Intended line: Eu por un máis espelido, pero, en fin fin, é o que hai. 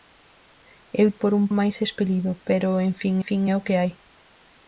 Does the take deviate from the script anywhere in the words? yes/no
no